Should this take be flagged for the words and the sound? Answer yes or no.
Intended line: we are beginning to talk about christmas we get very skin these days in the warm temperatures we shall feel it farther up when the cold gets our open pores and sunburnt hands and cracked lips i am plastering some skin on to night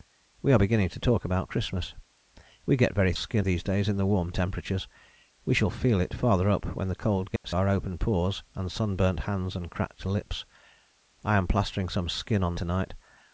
yes